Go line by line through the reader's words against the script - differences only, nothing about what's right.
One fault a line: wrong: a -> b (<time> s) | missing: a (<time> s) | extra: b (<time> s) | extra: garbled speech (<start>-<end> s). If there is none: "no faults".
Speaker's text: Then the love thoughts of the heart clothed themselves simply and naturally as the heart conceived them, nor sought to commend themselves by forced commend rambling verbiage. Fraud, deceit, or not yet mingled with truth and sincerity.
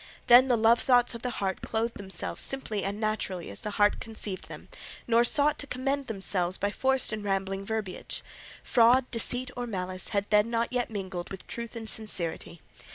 wrong: commend -> and (7.1 s)
extra: malice had then (9.7 s)